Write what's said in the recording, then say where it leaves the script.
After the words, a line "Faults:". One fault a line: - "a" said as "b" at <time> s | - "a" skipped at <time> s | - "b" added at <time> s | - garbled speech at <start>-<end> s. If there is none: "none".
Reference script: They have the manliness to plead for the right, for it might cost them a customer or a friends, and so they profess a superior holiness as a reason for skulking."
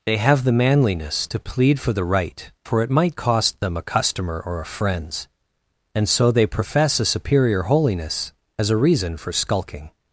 They have the manliness to plead for the right, for it might cost them a customer or a friends, and so they profess a superior holiness as a reason for skulking."
Faults:
none